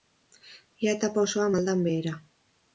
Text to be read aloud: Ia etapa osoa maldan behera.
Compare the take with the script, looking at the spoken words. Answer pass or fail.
pass